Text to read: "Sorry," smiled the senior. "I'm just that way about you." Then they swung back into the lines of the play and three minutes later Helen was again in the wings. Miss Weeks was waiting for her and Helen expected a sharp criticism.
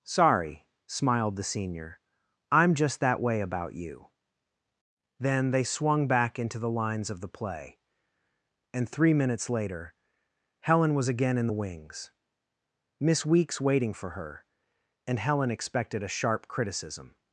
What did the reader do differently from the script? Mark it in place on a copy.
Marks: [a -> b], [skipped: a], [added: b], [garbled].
"Sorry," smiled the senior. "I'm just that way about you." Then they swung back into the lines of the play and three minutes later Helen was again in the wings. Miss Weeks [skipped: was] waiting for her and Helen expected a sharp criticism.